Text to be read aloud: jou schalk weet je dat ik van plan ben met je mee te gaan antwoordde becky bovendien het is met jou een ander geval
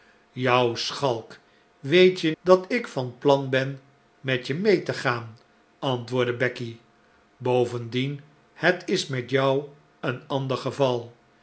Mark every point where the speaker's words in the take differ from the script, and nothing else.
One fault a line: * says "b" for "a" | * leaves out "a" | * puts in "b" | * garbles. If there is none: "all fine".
all fine